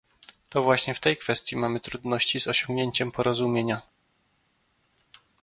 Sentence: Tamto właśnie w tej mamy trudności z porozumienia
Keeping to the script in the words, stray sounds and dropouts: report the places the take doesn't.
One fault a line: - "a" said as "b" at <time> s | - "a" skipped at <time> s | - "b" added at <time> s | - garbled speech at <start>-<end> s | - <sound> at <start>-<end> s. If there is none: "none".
- "Tamto" said as "To" at 0.5 s
- "kwestii" added at 1.2 s
- "osiągnięciem" added at 2.5 s